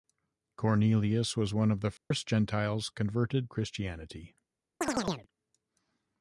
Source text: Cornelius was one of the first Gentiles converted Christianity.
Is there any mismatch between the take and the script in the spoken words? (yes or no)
no